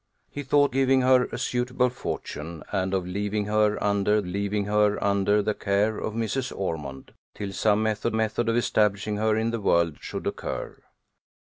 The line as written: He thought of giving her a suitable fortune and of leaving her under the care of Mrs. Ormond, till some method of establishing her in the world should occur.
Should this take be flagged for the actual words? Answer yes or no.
yes